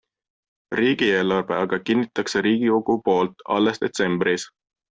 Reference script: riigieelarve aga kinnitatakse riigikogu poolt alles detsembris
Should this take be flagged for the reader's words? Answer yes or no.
no